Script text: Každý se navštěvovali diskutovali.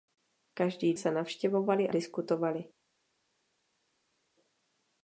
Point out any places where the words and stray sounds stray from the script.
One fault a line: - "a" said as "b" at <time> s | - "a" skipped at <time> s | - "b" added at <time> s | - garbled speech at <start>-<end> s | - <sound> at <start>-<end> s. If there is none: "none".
none